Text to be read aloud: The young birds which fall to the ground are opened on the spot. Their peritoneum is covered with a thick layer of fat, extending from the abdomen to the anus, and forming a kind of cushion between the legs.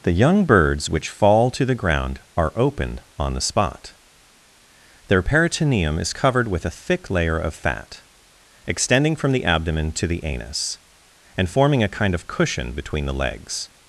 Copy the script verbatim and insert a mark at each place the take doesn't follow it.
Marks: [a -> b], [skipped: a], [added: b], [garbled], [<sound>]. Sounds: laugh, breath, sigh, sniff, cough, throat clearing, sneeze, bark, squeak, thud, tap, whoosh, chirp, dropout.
The young birds which fall to the ground are opened on the spot. Their peritoneum is covered with a thick layer of fat, extending from the abdomen to the anus, and forming a kind of cushion between the legs.